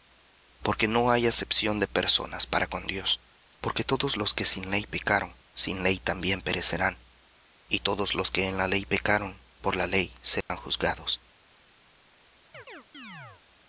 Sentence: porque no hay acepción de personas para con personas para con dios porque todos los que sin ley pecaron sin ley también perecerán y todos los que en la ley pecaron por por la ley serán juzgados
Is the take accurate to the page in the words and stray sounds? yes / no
no